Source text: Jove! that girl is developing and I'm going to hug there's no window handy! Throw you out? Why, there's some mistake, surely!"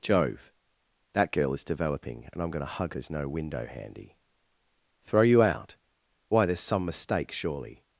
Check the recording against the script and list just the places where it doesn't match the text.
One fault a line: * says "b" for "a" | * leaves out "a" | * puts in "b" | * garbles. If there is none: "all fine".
all fine